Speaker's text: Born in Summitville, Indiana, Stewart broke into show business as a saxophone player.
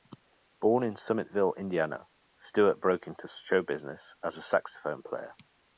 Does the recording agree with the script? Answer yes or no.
yes